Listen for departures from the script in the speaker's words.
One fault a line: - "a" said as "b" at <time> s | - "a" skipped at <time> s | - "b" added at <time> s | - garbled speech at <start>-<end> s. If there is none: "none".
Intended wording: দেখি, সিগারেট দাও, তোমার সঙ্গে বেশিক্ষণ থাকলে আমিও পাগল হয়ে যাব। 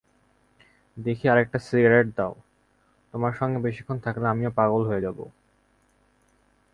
- "আরেকটা" added at 1.3 s